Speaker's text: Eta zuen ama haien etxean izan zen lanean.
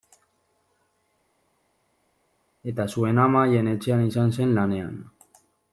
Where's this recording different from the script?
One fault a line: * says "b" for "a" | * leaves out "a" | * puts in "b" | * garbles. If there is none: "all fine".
all fine